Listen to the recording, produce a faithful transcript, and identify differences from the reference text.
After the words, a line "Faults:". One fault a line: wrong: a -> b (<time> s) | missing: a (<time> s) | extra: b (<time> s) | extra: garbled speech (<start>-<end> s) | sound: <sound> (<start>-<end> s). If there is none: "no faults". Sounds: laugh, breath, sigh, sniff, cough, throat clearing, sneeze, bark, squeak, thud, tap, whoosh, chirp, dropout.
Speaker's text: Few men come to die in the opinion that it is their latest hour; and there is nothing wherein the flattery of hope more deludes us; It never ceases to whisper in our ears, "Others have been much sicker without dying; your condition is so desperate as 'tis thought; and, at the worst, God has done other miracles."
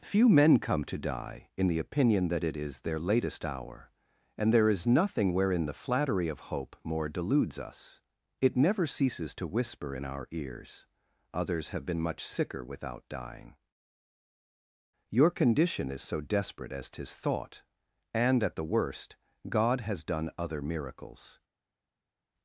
Few men come to die in the opinion that it is their latest hour; and there is nothing wherein the flattery of hope more deludes us; It never ceases to whisper in our ears, "Others have been much sicker without dying; your condition is so desperate as 'tis thought; and, at the worst, God has done other miracles."
Faults:
no faults